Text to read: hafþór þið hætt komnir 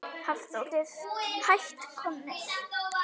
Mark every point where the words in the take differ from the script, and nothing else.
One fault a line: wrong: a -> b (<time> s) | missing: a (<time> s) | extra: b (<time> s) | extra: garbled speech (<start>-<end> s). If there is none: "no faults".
no faults